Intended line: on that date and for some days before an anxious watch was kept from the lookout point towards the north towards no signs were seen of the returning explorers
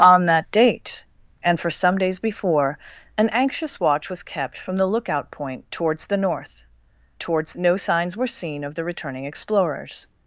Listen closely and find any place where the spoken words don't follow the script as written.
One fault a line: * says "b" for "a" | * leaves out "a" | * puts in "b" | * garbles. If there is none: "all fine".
all fine